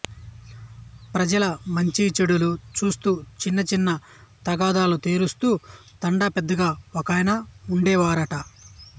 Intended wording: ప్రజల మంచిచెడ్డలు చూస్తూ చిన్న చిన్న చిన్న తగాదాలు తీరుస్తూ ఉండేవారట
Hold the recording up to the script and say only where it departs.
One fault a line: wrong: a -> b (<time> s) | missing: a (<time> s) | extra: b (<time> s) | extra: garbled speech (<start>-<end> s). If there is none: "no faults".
missing: చిన్న (3.9 s)
extra: తండా పెద్దగా ఒకాయన (6.0 s)